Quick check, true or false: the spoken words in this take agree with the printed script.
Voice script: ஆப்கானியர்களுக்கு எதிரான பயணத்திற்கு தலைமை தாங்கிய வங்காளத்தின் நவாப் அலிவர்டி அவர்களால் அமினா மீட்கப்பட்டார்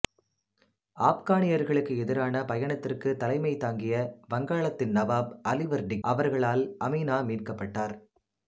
true